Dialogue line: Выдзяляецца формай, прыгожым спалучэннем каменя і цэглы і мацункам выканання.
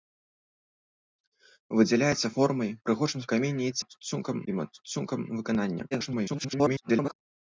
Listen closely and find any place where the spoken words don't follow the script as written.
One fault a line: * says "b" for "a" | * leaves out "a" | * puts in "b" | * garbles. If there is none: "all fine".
* leaves out "спалучэннем"
* says "мацункам" for "цэглы"
* garbles